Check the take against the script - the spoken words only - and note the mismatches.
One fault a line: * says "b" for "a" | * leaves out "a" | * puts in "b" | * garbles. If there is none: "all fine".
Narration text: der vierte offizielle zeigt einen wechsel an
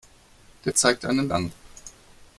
* leaves out "vierte offizielle"
* leaves out "wechsel"